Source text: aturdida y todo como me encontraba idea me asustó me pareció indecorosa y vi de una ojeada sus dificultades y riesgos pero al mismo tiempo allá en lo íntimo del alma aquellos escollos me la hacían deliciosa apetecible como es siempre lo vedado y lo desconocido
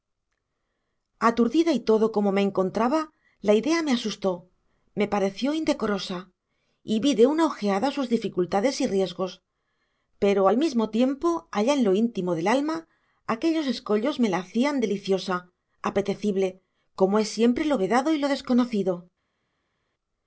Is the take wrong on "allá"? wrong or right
right